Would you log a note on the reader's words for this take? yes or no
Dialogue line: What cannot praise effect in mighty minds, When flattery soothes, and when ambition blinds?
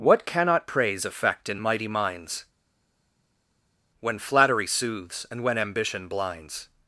no